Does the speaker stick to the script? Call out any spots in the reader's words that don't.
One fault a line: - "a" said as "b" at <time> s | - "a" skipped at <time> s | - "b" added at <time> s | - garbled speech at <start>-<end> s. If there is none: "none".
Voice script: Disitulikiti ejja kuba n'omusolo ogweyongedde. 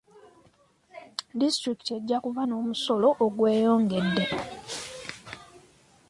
none